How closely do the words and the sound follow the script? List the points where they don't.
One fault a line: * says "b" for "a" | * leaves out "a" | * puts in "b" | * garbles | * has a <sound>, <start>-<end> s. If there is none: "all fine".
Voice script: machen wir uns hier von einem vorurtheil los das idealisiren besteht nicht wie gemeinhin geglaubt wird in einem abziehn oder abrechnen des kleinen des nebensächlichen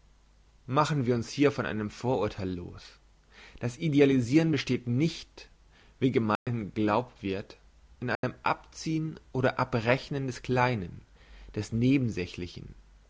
* has a dropout, 6.4-6.5 s
* has a dropout, 8.1-8.2 s